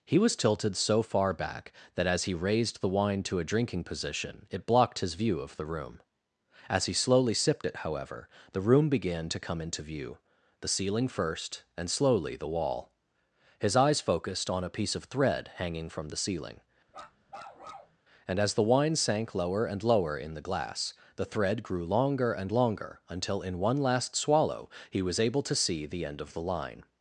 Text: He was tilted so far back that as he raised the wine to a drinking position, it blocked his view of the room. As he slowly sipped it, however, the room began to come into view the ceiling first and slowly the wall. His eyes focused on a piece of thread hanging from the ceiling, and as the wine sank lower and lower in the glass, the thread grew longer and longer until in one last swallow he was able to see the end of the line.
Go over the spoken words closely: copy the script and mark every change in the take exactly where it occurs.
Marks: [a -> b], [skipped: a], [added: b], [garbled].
He was tilted so far back that as he raised the wine to a drinking position, it blocked his view of the room. As he slowly sipped it, however, the room began to come into view the ceiling first and slowly the wall. His eyes focused on a piece of thread hanging from the ceiling, and as the wine sank lower and lower in the glass, the thread grew longer and longer until in one last swallow he was able to see the end of the line.